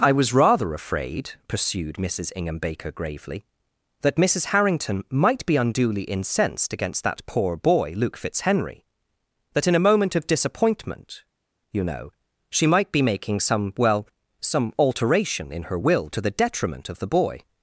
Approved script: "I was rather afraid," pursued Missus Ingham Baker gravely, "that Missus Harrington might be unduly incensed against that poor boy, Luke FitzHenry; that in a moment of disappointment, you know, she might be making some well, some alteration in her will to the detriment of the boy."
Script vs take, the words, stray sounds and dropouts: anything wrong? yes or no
no